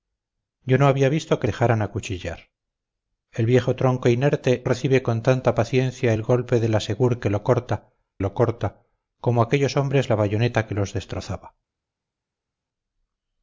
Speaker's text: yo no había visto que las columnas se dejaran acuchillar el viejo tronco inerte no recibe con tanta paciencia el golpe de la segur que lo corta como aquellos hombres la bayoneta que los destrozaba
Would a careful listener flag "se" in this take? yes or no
yes